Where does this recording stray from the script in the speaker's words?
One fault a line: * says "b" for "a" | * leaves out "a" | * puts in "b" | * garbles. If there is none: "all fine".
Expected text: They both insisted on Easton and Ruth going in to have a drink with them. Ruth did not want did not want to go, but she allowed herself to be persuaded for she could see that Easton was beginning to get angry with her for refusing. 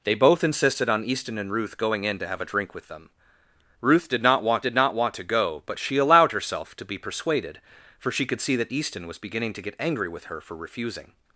all fine